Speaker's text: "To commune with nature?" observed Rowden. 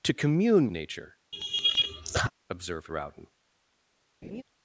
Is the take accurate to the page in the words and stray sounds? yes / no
no